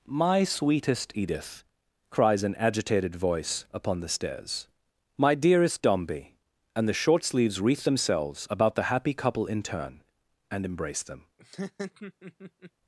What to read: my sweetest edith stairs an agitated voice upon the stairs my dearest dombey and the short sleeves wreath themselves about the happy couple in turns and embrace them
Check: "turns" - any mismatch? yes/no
yes